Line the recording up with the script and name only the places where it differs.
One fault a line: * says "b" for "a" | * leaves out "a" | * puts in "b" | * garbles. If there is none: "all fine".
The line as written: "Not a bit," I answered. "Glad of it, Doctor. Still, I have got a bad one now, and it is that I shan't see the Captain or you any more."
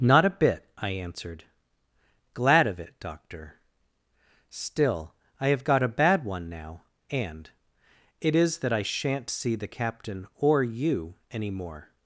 all fine